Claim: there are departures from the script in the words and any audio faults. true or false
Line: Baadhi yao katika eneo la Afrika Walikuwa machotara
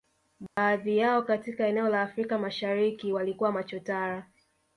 true